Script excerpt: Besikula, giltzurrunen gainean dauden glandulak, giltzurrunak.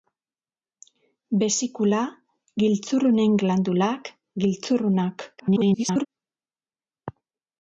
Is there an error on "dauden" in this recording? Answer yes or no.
yes